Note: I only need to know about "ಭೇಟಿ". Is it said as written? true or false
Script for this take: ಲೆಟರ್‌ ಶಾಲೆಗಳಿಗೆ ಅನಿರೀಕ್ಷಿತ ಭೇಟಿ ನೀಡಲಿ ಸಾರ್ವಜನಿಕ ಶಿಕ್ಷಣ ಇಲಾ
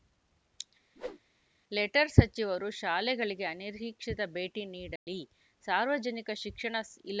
true